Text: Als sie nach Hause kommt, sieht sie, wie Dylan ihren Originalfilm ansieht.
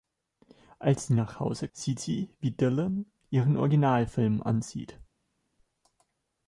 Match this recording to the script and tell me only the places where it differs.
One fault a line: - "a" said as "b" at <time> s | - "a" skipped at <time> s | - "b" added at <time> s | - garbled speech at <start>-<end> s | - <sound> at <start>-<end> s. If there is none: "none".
- "kommt" skipped at 1.7 s